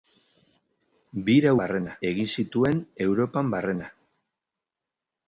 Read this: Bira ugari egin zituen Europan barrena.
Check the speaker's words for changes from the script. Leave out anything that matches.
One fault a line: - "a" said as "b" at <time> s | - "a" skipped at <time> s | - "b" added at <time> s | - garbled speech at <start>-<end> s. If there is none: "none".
- "ugari" said as "barrena" at 1.6 s